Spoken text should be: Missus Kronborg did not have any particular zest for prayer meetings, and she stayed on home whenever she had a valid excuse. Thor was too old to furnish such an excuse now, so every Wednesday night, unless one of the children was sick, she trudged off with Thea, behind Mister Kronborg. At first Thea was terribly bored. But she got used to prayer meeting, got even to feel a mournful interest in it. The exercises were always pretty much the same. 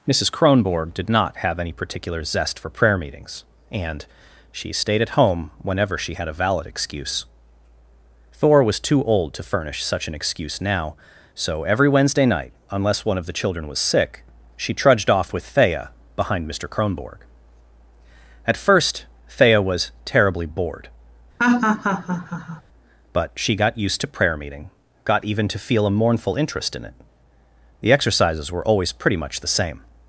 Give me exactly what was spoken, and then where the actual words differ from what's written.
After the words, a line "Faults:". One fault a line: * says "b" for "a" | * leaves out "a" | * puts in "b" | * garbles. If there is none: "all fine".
Missus Kronborg did not have any particular zest for prayer meetings, and she stayed at home whenever she had a valid excuse. Thor was too old to furnish such an excuse now, so every Wednesday night, unless one of the children was sick, she trudged off with Thea, behind Mister Kronborg. At first Thea was terribly bored. But she got used to prayer meeting, got even to feel a mournful interest in it. The exercises were always pretty much the same.
Faults:
* says "at" for "on"